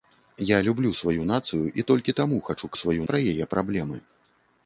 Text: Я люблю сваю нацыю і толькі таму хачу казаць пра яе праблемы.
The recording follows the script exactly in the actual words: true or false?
false